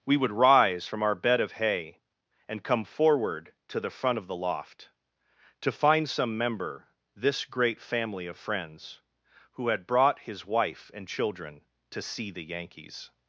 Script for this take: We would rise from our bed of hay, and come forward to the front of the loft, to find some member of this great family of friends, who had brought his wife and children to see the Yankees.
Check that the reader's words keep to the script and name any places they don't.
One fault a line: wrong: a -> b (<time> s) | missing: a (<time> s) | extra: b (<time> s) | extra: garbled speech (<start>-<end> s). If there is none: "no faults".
missing: of (6.9 s)